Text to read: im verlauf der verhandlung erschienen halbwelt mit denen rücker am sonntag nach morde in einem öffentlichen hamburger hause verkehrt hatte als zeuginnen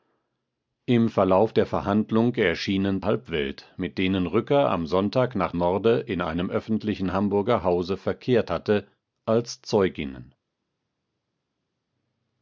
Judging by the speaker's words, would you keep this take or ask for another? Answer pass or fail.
pass